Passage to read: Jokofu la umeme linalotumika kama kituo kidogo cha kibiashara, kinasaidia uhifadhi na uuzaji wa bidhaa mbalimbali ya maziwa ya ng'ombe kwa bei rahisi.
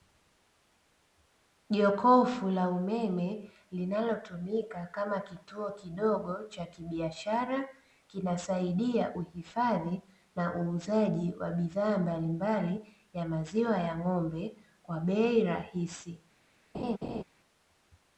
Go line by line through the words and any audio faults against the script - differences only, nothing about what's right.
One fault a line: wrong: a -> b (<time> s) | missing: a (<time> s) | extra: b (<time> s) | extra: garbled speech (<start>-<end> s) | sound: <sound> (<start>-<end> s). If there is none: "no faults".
sound: laugh (16.7-17.2 s)